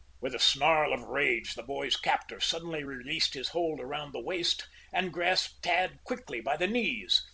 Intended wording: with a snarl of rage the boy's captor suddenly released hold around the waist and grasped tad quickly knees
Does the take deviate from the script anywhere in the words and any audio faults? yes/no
yes